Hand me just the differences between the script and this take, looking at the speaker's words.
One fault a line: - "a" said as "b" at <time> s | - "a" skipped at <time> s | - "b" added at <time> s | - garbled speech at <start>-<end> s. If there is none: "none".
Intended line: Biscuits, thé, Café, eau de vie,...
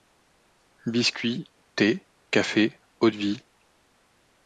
none